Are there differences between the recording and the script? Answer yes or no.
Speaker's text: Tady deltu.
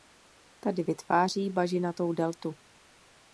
yes